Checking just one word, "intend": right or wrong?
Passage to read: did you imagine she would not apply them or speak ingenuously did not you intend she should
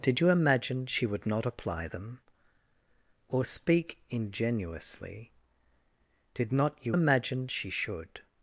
wrong